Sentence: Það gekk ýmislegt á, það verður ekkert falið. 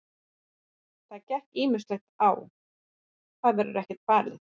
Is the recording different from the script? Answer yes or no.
no